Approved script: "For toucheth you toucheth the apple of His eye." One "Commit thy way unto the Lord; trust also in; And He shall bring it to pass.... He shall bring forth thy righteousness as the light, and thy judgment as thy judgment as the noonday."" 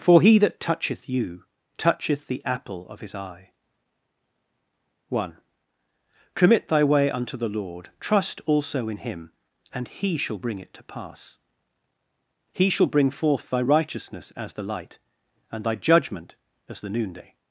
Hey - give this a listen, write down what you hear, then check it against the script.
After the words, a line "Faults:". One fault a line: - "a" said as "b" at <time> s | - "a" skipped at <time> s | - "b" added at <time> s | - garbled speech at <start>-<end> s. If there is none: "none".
"For he that toucheth you toucheth the apple of His eye." One "Commit thy way unto the Lord; trust also in Him; and He shall bring it to pass.... He shall bring forth thy righteousness as the light, and thy judgment as the noonday.""
Faults:
- "he that" added at 0.2 s
- "Him" added at 9.0 s
- "thy judgment as" skipped at 16.8 s